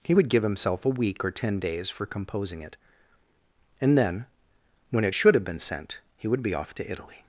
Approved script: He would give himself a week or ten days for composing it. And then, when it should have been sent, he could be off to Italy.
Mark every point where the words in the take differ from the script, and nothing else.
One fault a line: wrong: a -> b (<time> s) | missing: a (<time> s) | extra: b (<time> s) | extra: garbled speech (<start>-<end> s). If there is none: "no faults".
wrong: could -> would (6.3 s)